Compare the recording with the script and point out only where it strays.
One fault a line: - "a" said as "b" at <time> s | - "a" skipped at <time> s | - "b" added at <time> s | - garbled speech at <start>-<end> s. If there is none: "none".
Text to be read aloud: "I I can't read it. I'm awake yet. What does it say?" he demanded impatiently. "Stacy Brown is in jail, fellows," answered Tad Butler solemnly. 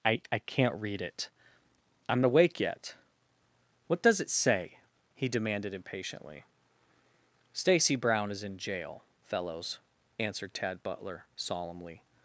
none